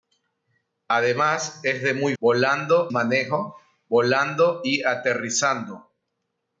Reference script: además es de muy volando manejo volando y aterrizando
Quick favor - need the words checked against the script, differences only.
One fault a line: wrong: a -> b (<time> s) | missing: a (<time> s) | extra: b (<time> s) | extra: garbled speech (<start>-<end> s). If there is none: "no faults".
no faults